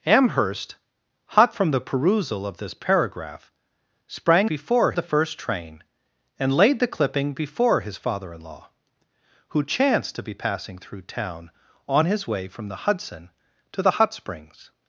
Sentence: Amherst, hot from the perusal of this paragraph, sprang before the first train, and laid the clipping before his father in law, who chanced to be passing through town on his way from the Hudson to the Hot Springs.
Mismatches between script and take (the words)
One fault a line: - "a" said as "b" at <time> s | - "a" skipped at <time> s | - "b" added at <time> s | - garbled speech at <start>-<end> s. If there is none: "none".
none